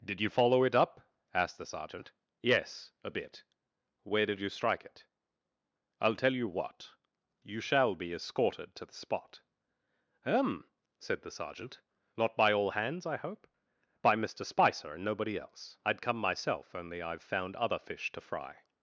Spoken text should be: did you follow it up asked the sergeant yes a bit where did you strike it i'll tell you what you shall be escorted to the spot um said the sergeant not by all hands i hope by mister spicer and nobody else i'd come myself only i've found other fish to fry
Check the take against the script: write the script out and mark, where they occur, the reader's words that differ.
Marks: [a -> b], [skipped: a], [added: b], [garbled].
did you follow it up asked the sergeant yes a bit where did you strike it i'll tell you what you shall be escorted to the spot um said the sergeant not by all hands i hope by mister spicer and nobody else i'd come myself only i've found other fish to fry